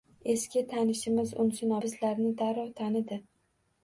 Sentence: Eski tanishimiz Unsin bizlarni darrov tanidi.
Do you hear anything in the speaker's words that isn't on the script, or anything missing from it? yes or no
no